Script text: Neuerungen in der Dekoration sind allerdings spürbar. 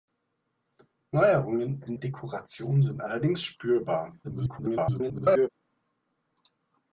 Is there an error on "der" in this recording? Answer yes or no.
yes